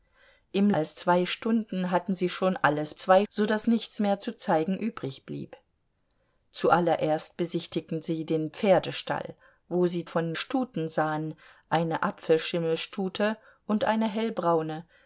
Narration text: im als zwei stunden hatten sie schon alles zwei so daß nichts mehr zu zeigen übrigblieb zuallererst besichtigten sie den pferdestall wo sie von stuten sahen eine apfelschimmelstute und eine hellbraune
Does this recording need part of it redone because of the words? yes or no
no